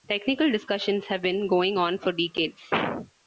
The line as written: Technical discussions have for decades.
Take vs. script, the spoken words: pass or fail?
fail